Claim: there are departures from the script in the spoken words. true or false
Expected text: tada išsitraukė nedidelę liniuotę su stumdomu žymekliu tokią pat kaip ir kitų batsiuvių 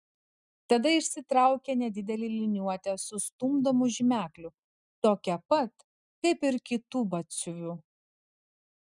false